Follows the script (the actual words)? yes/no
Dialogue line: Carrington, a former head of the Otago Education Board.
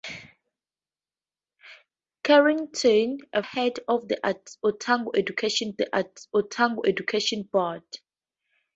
no